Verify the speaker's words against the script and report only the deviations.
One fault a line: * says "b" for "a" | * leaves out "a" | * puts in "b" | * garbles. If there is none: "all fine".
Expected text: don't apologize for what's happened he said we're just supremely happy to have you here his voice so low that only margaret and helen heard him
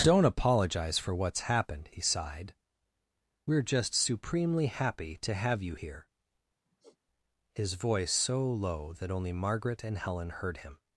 * says "sighed" for "said"